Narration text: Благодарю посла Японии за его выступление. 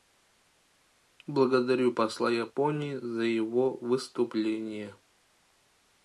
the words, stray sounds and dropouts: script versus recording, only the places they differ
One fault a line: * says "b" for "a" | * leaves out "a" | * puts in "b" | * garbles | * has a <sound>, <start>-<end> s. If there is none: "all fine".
all fine